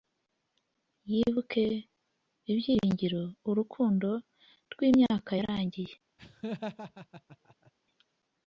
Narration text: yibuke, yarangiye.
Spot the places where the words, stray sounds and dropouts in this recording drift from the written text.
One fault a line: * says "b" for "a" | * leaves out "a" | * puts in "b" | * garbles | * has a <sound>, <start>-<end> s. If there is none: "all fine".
* puts in "ibyiringiro urukundo rwimyaka"
* has a laugh, 6.2-7.7 s